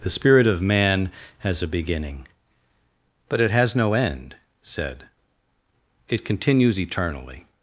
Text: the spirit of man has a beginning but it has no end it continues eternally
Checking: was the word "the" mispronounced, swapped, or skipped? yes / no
no